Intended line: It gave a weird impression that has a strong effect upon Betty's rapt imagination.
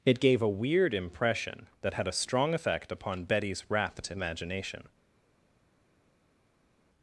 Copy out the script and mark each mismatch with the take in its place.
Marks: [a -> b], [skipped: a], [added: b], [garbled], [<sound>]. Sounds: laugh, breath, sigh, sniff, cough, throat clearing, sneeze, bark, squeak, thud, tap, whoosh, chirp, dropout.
It gave a weird impression that [has -> had] a strong effect upon Betty's rapt imagination.